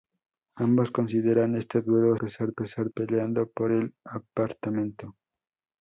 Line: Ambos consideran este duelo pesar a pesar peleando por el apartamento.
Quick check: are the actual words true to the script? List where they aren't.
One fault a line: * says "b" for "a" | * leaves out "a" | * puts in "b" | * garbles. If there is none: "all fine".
all fine